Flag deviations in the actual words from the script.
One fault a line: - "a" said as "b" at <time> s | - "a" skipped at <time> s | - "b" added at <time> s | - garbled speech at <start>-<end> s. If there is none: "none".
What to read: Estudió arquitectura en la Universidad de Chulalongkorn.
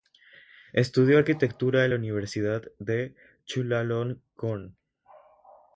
none